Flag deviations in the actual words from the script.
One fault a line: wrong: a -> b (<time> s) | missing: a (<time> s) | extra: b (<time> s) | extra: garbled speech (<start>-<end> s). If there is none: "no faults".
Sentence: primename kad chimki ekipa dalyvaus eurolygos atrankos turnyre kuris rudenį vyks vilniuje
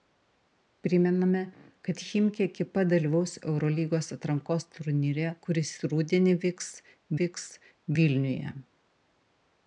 extra: vyks (7.2 s)